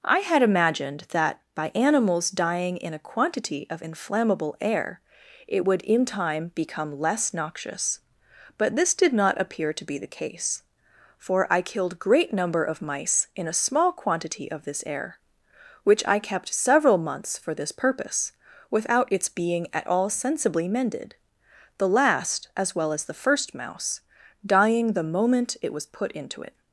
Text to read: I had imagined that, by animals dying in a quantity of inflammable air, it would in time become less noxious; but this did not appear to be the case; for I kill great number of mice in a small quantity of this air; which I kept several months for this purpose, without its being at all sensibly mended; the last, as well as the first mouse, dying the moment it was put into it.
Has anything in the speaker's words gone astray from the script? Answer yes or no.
yes